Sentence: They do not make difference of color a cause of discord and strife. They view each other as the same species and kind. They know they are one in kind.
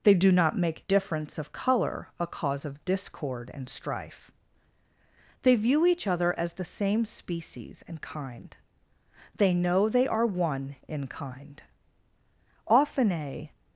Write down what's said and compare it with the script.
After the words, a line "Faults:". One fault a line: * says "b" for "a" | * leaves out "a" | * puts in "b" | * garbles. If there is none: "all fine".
They do not make difference of color a cause of discord and strife. They view each other as the same species and kind. They know they are one in kind. Often a
Faults:
* puts in "Often a"